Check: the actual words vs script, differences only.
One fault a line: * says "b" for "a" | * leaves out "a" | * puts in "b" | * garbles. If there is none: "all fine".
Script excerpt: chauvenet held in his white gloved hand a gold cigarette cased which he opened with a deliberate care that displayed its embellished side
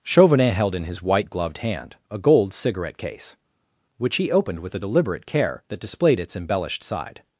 * says "case" for "cased"